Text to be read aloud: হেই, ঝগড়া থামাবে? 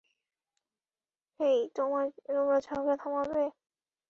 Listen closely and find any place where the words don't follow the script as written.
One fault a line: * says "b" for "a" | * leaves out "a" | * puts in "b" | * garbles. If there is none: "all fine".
* puts in "তোমরা"